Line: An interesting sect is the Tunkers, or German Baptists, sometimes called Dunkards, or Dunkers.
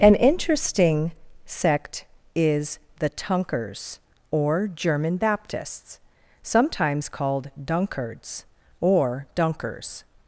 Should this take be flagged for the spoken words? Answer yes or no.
no